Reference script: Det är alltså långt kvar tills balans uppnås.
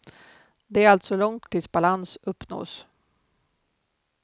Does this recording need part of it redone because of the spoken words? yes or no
yes